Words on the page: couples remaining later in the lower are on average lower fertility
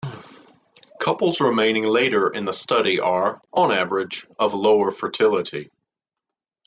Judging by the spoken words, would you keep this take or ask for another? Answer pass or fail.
fail